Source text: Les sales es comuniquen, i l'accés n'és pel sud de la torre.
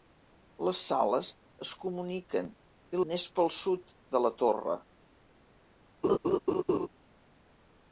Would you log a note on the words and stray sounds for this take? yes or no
yes